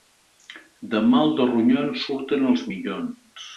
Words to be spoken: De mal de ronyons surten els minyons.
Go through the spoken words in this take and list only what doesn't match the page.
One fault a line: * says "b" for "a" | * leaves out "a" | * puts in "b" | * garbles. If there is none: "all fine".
all fine